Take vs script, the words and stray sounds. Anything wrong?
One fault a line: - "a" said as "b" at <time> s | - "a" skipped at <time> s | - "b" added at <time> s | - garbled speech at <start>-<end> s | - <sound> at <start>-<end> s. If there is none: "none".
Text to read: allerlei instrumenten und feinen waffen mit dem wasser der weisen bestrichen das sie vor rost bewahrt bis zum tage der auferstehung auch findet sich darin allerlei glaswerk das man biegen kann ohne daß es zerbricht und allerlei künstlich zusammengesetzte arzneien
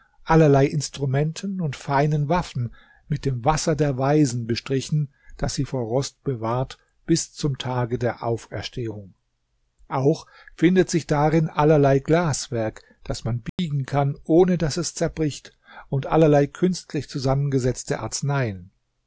- dropout at 13.5-13.6 s